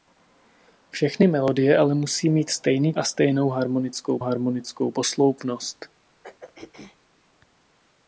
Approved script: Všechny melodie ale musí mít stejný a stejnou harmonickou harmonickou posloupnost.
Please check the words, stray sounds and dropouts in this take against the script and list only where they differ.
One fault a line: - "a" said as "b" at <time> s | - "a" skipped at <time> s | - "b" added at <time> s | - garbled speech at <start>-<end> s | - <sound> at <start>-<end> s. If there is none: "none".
- throat clearing at 6.2-7.0 s